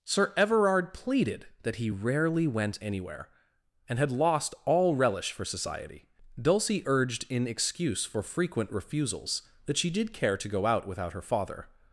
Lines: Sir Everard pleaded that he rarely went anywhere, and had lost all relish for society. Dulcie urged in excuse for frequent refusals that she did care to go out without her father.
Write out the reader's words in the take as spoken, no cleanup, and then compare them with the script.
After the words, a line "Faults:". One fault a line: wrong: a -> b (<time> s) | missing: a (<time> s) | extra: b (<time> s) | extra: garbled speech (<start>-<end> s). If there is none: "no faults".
Sir Everard pleaded that he rarely went anywhere, and had lost all relish for society. Dulcie urged in excuse for frequent refusals that she did care to go out without her father.
Faults:
no faults